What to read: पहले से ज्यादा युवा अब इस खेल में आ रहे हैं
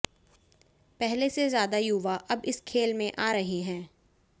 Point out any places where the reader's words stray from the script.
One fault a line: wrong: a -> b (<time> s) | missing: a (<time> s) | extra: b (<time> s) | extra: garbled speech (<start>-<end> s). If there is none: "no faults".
no faults